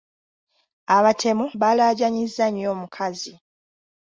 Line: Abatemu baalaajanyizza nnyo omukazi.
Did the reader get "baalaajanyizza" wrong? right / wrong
right